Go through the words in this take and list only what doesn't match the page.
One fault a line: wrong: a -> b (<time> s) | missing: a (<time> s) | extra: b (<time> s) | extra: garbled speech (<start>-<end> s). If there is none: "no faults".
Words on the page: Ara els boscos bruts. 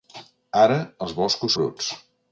no faults